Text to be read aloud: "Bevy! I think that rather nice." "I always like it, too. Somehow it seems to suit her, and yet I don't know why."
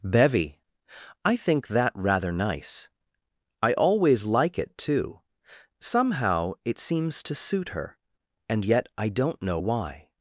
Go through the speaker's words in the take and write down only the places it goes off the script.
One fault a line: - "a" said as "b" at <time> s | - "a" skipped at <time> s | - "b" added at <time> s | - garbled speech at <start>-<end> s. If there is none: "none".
none